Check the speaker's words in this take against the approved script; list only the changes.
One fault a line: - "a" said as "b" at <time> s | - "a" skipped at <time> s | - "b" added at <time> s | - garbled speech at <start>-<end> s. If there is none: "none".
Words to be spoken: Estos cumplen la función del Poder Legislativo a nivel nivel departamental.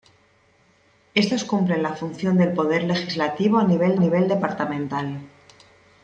none